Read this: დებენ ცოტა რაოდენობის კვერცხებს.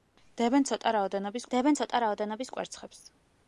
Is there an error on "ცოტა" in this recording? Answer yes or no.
no